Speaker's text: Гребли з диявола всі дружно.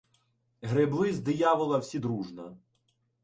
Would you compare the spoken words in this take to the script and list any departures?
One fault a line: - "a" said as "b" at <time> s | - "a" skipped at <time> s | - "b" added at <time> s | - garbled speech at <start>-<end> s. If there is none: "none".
none